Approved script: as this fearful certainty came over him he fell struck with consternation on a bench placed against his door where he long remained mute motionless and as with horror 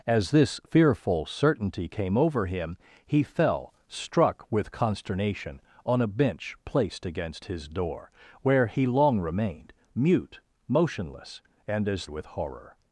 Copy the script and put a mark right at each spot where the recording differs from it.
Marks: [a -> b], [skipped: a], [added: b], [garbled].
as this fearful certainty came over him he fell struck with consternation on a bench placed against his door where he long remained mute motionless and as with horror